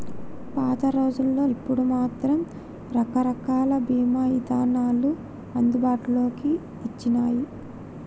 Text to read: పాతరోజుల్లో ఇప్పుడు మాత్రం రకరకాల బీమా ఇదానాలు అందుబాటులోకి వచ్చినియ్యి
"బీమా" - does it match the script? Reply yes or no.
yes